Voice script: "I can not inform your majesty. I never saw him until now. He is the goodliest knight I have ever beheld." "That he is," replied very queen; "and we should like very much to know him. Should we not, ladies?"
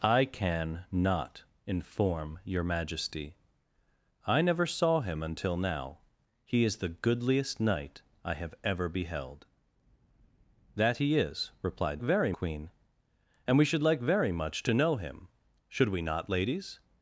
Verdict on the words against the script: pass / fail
pass